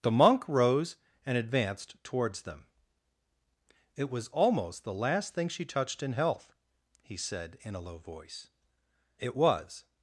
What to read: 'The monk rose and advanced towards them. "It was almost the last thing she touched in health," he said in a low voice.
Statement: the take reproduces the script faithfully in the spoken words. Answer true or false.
false